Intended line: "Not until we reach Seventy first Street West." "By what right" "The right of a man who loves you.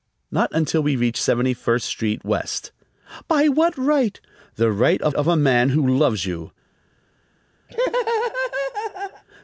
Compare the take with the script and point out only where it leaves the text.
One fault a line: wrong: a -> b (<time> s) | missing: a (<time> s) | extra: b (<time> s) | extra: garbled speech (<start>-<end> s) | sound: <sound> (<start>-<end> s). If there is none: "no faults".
extra: of (5.2 s)
sound: laugh (7.7-9.2 s)